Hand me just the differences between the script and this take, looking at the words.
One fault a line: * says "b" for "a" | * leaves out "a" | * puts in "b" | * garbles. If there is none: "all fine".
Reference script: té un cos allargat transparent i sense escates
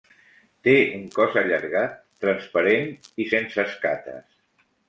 all fine